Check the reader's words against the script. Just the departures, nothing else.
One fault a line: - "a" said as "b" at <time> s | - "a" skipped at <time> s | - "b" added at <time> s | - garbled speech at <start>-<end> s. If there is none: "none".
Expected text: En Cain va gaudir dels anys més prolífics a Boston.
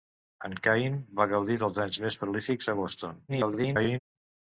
- garbled speech at 3.3-4.0 s